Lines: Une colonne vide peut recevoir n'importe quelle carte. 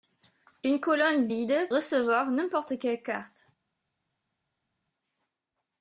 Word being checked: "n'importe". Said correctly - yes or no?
yes